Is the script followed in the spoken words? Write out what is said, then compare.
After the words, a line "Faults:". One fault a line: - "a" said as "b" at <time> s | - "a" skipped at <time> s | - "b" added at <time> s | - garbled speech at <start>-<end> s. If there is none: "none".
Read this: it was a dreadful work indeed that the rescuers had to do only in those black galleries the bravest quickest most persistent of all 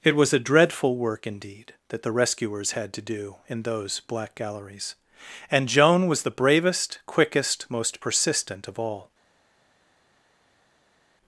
it was a dreadful work indeed that the rescuers had to do in those black galleries and joan was the bravest quickest most persistent of all
Faults:
- "only" skipped at 3.4 s
- "and joan was" added at 5.5 s